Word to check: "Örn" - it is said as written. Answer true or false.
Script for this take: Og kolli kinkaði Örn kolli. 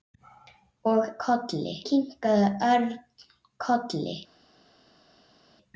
true